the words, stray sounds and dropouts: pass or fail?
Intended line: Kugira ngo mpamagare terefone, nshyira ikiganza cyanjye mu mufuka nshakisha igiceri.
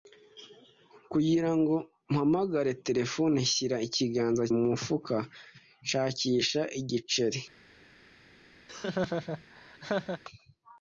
fail